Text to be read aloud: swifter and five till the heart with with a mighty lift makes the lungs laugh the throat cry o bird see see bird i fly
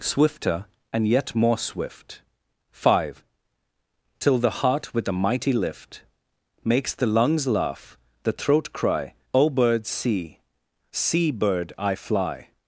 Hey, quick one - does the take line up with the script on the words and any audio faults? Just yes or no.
no